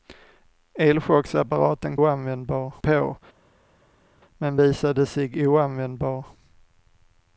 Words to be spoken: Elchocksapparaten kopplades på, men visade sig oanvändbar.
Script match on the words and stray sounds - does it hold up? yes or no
no